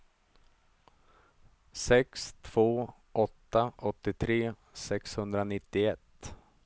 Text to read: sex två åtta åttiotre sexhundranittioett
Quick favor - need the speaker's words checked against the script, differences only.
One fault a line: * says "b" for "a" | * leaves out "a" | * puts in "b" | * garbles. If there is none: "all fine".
all fine